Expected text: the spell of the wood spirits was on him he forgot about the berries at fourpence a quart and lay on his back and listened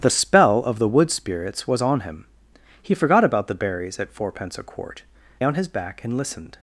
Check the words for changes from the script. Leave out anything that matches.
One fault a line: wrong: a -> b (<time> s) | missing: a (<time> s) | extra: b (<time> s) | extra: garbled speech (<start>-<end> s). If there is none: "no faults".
missing: and lay (5.0 s)